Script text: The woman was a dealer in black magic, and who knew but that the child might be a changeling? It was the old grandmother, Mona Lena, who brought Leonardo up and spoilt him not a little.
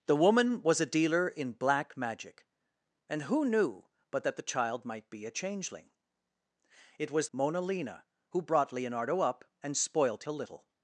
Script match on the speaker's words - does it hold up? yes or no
no